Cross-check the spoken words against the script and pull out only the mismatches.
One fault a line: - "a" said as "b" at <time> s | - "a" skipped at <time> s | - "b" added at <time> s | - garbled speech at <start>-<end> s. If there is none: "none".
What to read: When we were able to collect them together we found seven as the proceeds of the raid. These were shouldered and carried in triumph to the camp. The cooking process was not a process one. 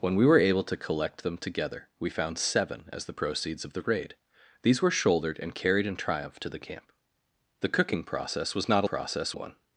none